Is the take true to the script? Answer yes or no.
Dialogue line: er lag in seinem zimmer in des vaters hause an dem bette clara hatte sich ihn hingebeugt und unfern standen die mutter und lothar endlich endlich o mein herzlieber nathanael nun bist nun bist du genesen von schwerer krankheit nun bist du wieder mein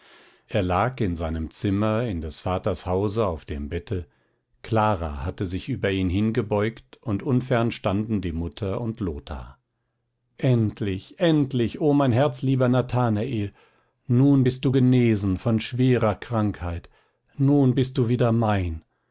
no